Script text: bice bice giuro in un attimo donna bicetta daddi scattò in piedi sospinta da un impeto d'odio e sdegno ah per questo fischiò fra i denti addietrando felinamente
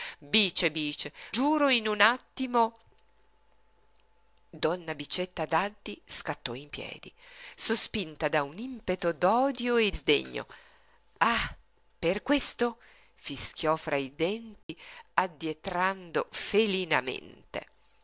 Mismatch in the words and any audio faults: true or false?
true